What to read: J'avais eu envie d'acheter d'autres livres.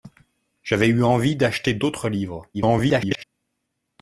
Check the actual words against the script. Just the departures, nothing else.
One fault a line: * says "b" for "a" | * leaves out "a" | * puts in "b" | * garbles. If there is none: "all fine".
* garbles